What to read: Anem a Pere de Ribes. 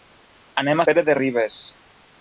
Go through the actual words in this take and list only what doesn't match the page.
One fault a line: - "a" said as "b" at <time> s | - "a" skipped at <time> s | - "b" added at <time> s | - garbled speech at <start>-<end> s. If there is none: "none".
none